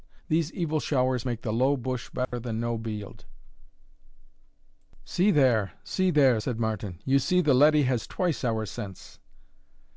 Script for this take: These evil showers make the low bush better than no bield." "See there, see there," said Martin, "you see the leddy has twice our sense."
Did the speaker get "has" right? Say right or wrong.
right